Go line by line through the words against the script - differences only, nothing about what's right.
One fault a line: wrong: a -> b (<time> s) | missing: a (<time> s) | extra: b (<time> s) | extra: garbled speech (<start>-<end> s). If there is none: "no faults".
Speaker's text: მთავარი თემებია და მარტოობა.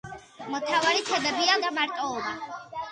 no faults